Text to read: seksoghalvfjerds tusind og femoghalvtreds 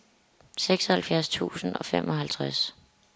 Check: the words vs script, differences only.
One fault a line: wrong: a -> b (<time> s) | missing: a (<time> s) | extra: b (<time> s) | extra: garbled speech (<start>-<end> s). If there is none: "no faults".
no faults